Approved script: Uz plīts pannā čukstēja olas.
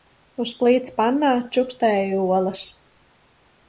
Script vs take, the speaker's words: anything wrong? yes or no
no